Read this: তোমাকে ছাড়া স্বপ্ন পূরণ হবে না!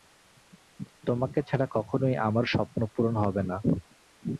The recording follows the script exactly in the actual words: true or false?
false